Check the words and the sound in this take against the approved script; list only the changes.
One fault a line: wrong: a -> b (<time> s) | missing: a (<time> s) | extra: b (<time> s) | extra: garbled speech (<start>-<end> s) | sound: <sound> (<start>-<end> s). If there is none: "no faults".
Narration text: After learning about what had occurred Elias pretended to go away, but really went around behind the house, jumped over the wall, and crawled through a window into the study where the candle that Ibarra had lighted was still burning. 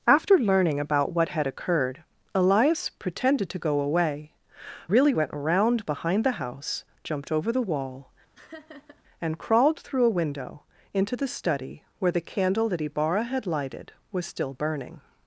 missing: but (4.3 s)
sound: laugh (8.3-9.0 s)